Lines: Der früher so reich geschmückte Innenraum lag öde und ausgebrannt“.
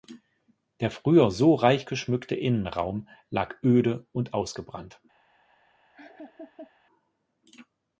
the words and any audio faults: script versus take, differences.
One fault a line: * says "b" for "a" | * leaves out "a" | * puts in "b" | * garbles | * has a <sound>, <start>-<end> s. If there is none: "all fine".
* has a laugh, 5.9-6.7 s